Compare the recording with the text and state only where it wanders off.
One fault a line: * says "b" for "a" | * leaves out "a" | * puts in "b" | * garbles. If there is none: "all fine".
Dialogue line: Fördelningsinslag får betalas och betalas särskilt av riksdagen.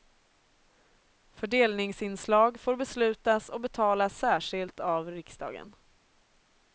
* says "beslutas" for "betalas"